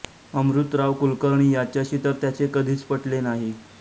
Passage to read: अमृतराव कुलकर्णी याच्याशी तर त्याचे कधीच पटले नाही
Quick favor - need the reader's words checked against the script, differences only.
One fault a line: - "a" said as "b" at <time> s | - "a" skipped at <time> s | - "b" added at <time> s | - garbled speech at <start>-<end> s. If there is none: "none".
none